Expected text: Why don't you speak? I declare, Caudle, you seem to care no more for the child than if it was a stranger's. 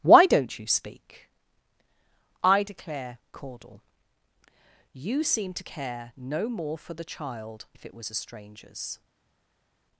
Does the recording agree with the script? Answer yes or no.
no